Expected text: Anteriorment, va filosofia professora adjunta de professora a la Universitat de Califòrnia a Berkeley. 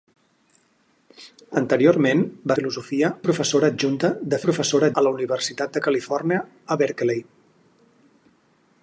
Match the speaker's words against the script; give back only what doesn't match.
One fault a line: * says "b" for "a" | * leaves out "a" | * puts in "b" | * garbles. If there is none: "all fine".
all fine